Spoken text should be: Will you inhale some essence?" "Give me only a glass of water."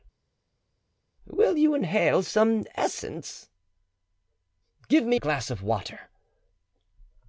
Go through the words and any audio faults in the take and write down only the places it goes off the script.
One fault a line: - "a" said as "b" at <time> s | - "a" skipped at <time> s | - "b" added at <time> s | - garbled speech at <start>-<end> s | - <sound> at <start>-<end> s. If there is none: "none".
- "only" skipped at 5.2 s